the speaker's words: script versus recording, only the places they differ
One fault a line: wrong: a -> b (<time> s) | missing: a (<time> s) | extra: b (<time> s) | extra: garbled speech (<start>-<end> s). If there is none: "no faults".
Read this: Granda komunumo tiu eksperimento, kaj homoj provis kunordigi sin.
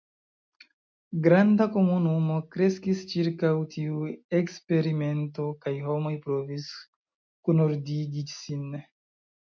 extra: kreskis ĉirkaŭ (2.5 s)